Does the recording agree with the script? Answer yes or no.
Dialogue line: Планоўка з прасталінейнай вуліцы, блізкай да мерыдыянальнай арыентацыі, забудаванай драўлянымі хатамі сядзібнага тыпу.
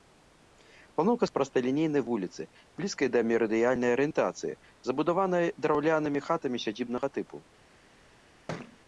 yes